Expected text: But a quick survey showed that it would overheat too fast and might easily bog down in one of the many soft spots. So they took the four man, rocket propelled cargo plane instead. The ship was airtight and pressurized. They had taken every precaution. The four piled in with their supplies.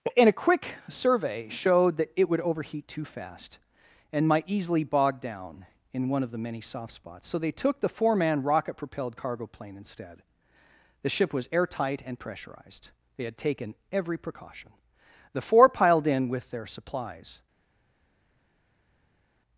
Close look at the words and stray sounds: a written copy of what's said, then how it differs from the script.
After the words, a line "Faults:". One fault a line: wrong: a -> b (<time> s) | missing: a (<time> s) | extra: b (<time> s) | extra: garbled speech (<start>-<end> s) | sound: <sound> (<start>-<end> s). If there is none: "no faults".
And a quick survey showed that it would overheat too fast and might easily bog down in one of the many soft spots. So they took the four man, rocket propelled cargo plane instead. The ship was airtight and pressurized. They had taken every precaution. The four piled in with their supplies.
Faults:
wrong: But -> And (0.2 s)